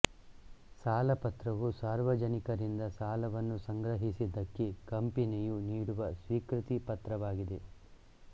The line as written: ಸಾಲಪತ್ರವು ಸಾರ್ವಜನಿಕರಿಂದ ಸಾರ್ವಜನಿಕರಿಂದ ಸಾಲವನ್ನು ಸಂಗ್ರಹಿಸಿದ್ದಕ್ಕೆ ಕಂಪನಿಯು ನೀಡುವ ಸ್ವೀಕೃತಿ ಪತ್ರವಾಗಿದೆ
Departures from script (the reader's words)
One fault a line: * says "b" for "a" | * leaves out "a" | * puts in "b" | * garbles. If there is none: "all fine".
* leaves out "ಸಾರ್ವಜನಿಕರಿಂದ"